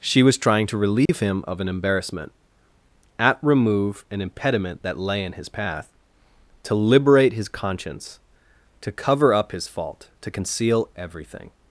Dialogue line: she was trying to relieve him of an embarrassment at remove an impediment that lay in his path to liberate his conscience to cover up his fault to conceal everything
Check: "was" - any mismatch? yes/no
no